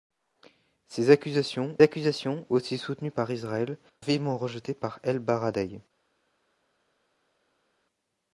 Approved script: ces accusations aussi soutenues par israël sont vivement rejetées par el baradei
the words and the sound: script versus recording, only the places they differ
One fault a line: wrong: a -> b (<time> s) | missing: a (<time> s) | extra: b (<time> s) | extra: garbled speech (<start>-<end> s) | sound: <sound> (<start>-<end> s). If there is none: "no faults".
extra: accusations (1.8 s)
missing: sont (3.8 s)